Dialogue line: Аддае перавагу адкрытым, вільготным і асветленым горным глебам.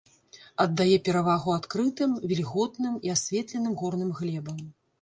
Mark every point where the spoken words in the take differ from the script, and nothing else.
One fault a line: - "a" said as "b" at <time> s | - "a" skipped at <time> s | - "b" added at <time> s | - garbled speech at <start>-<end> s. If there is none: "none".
none